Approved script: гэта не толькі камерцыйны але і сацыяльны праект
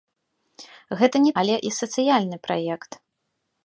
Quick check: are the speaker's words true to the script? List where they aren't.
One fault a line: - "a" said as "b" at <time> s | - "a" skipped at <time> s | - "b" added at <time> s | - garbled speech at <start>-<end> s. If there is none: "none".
- "толькі камерцыйны" skipped at 1.3 s